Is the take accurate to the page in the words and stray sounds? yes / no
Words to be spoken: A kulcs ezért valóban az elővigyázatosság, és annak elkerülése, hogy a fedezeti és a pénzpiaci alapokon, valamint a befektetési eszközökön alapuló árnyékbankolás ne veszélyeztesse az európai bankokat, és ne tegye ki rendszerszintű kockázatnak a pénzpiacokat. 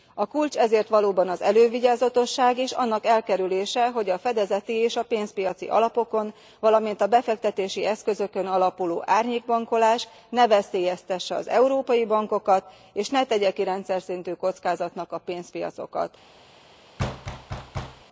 no